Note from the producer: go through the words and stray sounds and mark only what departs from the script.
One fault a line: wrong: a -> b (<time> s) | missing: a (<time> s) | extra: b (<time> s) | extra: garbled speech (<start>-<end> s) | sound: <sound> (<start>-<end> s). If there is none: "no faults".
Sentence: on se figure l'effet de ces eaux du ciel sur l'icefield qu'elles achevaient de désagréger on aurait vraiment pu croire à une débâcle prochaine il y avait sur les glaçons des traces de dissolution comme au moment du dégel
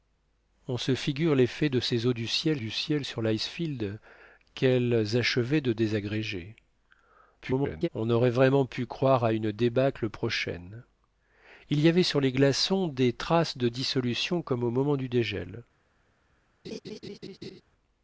extra: du ciel (2.6 s)
extra: garbled speech (7.4-7.9 s)
sound: laugh (16.6-17.6 s)